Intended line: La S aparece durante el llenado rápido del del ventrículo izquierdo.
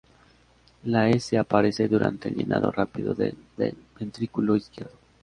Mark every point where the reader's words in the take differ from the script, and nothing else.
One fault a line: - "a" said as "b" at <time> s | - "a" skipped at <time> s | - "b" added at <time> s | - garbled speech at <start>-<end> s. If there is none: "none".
none